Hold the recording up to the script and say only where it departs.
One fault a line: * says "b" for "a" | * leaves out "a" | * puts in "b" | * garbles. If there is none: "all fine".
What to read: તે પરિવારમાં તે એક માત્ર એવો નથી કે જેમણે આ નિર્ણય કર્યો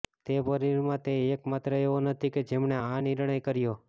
all fine